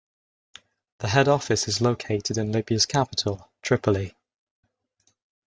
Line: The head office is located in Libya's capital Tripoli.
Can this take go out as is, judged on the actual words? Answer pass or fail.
pass